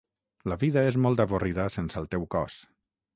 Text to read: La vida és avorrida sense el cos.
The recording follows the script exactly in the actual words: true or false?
false